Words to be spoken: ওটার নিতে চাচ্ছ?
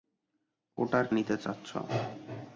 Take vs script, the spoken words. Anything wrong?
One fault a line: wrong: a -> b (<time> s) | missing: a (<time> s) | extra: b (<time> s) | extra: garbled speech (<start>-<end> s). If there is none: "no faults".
no faults